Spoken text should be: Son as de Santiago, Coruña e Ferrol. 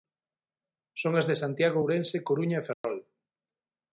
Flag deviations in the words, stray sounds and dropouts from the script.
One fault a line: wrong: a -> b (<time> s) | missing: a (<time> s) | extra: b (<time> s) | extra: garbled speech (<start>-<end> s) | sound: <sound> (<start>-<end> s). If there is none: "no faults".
extra: Ourense (1.8 s)
sound: dropout (2.7-2.8 s)